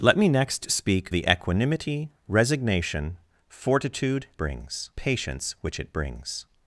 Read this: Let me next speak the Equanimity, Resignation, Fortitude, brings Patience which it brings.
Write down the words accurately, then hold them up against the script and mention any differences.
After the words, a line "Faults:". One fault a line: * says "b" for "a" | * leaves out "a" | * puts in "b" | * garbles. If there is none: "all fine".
Let me next speak the Equanimity, Resignation, Fortitude, brings Patience which it brings.
Faults:
all fine